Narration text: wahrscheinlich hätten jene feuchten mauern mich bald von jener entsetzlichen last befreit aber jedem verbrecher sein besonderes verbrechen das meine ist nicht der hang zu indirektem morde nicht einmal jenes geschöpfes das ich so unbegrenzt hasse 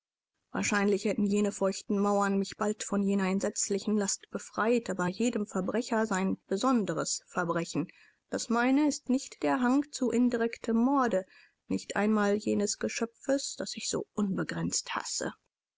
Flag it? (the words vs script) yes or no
no